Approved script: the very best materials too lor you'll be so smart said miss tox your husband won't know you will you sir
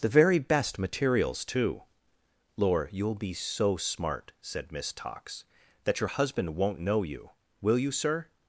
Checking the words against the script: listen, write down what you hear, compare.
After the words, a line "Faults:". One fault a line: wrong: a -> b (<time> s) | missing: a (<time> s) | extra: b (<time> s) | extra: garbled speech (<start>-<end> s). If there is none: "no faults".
the very best materials too lor you'll be so smart said miss tox that your husband won't know you will you sir
Faults:
extra: that (5.8 s)